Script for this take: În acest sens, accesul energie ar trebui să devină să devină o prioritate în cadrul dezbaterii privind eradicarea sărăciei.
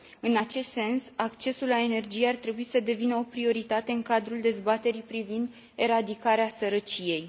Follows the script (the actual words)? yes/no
no